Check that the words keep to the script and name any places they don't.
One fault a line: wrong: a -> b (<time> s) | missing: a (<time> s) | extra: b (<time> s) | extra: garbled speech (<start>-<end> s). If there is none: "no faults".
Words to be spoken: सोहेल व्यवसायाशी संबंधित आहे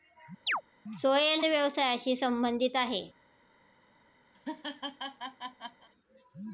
no faults